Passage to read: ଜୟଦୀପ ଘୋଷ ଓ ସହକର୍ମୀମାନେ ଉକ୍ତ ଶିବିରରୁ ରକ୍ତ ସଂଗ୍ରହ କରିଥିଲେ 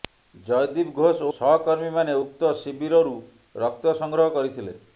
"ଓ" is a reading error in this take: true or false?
true